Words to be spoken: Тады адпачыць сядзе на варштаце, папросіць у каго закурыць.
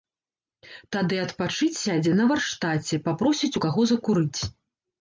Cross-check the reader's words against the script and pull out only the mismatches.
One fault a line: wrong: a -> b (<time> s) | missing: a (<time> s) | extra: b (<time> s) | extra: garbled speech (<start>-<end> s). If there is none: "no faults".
no faults